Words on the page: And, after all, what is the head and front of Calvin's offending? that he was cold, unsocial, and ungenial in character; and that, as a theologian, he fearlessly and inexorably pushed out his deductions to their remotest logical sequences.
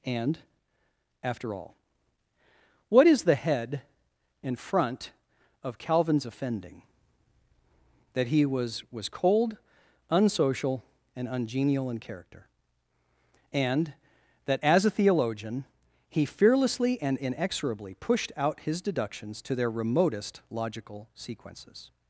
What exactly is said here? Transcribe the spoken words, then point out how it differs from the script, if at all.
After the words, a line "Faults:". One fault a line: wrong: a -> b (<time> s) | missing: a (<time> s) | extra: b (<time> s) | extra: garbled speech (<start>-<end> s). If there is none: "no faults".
And, after all, what is the head and front of Calvin's offending? that he was was cold, unsocial, and ungenial in character; and that, as a theologian, he fearlessly and inexorably pushed out his deductions to their remotest logical sequences.
Faults:
extra: was (8.9 s)